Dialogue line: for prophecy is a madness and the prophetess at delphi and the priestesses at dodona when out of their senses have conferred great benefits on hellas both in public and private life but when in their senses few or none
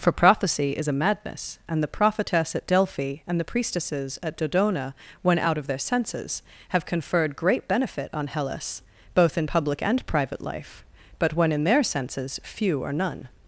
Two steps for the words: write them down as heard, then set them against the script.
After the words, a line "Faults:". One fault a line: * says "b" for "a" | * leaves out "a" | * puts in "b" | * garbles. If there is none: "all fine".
for prophecy is a madness and the prophetess at delphi and the priestesses at dodona when out of their senses have conferred great benefit on hellas both in public and private life but when in their senses few or none
Faults:
* says "benefit" for "benefits"